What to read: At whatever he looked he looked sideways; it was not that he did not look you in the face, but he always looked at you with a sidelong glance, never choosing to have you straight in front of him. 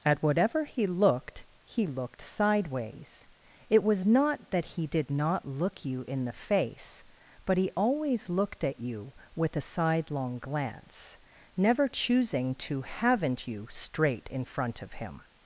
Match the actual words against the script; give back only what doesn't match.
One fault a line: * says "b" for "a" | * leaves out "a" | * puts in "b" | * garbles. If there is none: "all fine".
* says "haven't" for "have"